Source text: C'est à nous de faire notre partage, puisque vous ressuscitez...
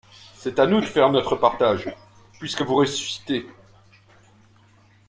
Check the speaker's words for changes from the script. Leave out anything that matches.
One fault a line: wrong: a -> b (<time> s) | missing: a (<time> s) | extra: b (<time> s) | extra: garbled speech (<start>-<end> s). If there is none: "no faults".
no faults